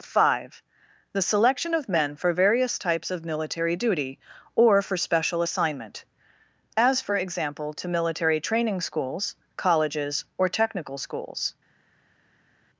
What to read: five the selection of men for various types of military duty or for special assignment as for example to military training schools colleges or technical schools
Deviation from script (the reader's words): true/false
false